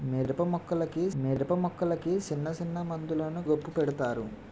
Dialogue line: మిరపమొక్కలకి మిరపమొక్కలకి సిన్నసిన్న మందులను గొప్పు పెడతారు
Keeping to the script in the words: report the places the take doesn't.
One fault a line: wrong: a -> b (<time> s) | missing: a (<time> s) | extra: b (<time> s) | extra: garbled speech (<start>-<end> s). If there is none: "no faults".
no faults